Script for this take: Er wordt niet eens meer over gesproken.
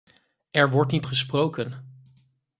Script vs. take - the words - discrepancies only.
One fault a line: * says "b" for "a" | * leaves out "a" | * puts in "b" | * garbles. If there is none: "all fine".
* leaves out "eens meer over"